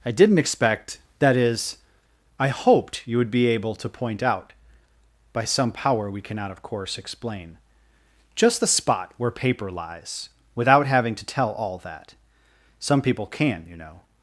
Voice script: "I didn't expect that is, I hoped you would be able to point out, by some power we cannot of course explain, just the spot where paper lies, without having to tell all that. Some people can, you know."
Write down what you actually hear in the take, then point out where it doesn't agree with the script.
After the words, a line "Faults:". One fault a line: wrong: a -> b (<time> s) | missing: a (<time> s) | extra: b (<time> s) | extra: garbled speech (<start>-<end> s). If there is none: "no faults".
"I didn't expect that is, I hoped you would be able to point out, by some power we cannot of course explain, just the spot where paper lies, without having to tell all that. Some people can, you know."
Faults:
no faults